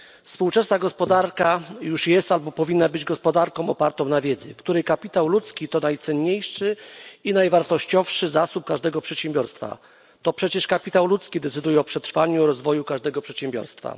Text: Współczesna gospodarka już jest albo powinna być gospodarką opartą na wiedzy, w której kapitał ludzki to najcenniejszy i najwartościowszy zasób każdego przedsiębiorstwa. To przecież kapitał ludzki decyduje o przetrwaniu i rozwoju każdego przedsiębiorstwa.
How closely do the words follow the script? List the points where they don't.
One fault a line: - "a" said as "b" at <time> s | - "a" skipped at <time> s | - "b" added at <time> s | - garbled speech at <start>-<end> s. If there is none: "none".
none